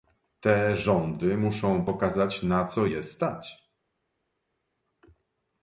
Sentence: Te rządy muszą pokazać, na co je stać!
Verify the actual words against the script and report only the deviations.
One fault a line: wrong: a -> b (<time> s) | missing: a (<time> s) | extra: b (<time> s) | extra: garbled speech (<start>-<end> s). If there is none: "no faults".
no faults